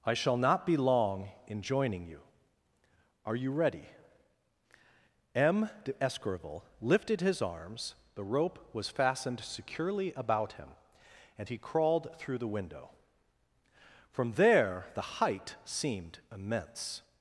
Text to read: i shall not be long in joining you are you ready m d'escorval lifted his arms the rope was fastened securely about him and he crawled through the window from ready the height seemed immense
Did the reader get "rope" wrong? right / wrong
right